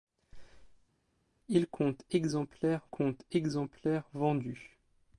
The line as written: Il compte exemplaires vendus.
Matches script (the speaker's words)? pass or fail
fail